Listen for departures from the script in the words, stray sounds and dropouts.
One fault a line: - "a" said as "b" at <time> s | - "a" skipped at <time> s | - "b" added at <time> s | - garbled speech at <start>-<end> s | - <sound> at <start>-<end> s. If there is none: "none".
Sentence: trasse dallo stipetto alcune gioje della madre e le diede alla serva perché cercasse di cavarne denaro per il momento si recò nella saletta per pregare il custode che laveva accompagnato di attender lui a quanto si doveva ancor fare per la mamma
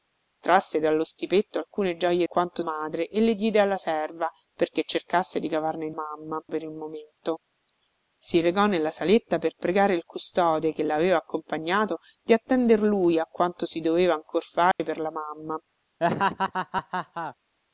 - "della" said as "quanto" at 2.2 s
- "denaro" said as "mamma" at 5.9 s
- dropout at 14.7-14.8 s
- laugh at 16.0-17.4 s